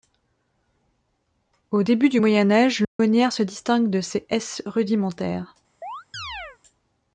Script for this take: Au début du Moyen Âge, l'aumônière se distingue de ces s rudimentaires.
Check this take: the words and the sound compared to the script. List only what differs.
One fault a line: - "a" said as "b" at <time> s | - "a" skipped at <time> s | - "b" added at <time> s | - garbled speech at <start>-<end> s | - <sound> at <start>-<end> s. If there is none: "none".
- dropout at 2.8-3.0 s
- chirp at 5.8-6.6 s